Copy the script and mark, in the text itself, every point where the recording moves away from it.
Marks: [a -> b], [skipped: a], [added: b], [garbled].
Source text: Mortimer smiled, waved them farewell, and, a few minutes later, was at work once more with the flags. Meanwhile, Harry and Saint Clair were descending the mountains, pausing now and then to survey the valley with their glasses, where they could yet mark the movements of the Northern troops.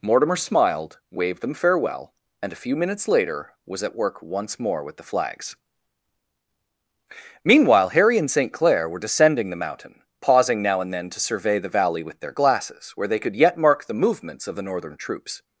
Mortimer smiled, waved them farewell, and, a few minutes later, was at work once more with the flags. Meanwhile, Harry and Saint Clair were descending the [mountains, -> mountain] pausing now and then to survey the valley with their glasses, where they could yet mark the movements of the Northern troops.